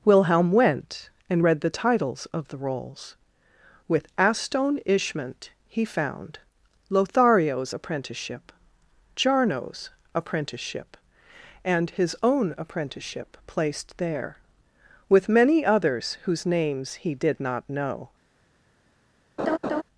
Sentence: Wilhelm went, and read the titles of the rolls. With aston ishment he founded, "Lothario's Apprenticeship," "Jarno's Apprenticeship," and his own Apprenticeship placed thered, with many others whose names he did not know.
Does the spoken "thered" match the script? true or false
false